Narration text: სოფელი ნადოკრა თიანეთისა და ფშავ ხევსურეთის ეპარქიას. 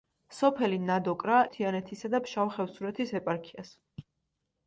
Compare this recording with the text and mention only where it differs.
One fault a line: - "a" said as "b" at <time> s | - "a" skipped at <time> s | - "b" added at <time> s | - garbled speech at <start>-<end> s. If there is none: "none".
none